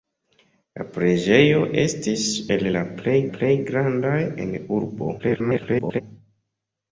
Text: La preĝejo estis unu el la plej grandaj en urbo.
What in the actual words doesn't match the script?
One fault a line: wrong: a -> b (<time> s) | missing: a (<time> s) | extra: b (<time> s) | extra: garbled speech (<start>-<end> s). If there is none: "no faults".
missing: unu (2.2 s)
extra: plej (3.3 s)
extra: garbled speech (5.2-6.0 s)